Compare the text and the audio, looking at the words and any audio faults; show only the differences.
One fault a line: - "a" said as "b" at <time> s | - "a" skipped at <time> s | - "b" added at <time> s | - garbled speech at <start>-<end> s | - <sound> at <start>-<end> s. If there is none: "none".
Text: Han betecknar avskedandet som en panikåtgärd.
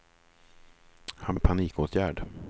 - "betecknar avskedandet som" skipped at 1.4 s